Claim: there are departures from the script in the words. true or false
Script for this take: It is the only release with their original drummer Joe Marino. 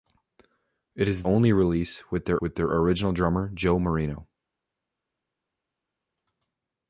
true